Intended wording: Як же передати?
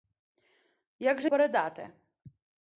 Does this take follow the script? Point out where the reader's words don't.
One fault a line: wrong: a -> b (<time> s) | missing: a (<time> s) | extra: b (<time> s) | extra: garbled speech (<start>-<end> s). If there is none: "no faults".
no faults